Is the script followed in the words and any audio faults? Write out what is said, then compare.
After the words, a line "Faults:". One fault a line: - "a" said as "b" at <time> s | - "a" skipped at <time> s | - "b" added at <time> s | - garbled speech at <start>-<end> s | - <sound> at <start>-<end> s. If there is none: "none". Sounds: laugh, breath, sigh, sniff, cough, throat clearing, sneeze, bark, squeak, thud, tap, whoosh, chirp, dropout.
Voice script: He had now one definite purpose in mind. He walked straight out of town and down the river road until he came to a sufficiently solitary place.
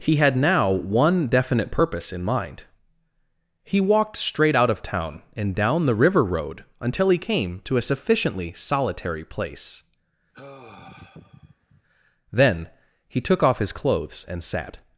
He had now one definite purpose in mind. He walked straight out of town and down the river road until he came to a sufficiently solitary place. Then he took off his clothes and sat
Faults:
- sigh at 10.3-11.8 s
- "Then he took off his clothes and sat" added at 12.3 s